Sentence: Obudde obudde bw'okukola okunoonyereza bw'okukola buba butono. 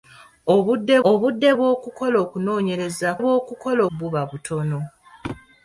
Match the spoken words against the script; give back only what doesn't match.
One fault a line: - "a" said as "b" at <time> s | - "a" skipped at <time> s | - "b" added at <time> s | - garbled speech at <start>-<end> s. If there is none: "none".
none